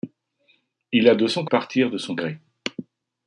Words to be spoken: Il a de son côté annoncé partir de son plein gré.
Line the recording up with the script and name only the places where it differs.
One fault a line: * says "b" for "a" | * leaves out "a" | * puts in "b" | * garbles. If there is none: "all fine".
* leaves out "côté annoncé"
* leaves out "plein"